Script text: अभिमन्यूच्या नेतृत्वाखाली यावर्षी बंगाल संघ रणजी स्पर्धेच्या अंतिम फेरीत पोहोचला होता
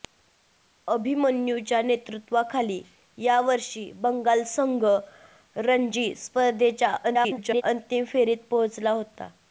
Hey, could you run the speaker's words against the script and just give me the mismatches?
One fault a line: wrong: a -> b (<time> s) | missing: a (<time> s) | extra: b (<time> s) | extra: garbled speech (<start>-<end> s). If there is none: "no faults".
extra: garbled speech (7.0-7.6 s)